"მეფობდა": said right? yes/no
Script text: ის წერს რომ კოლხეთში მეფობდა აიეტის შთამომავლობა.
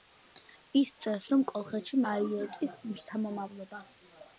no